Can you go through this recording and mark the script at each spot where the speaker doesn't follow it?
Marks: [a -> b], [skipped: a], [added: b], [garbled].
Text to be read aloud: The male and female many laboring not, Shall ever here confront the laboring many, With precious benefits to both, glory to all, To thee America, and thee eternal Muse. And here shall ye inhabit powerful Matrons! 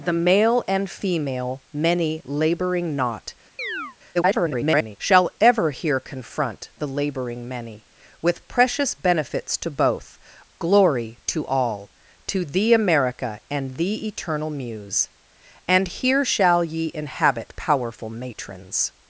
The male and female many laboring not, [garbled] Shall ever here confront the laboring many, With precious benefits to both, glory to all, To thee America, and thee eternal Muse. And here shall ye inhabit powerful Matrons!